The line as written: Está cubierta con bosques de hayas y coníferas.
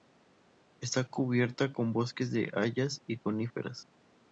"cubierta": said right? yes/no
yes